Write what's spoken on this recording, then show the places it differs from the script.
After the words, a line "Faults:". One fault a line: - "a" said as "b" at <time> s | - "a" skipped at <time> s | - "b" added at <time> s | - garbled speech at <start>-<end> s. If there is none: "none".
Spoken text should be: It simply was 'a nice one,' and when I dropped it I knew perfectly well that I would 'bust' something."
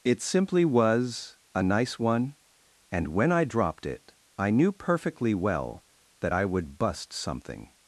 It simply was 'a nice one,' and when I dropped it I knew perfectly well that I would 'bust' something."
Faults:
none